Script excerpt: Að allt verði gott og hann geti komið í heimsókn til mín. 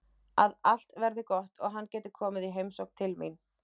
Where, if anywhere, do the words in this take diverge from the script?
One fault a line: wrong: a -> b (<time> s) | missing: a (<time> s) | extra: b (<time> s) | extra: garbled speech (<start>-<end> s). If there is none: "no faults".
no faults